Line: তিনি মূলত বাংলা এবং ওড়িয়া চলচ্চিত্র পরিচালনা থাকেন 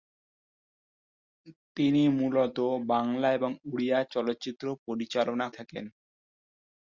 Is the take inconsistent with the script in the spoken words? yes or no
no